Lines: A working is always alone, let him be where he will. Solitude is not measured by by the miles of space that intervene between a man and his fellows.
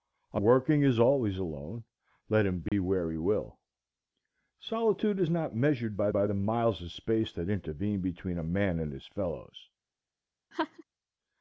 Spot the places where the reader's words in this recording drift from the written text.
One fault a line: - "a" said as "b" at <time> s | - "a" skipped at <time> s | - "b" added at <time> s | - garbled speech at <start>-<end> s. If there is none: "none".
none